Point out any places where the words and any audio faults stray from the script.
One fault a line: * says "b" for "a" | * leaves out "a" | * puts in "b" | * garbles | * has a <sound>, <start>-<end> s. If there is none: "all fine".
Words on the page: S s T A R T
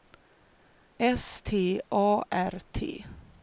* leaves out "s"